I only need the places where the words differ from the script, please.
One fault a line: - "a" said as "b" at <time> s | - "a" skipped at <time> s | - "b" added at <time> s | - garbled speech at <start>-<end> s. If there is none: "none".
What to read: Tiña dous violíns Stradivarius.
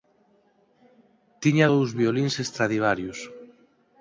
none